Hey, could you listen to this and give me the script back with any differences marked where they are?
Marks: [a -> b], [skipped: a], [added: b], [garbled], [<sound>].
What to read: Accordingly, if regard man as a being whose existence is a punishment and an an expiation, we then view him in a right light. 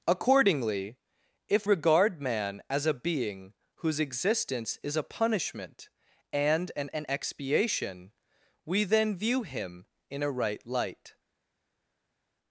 Accordingly, if regard man as a being whose existence is a punishment and an an expiation, we then view him in a right light.